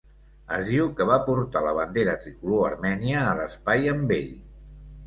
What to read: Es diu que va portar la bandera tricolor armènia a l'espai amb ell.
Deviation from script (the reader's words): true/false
false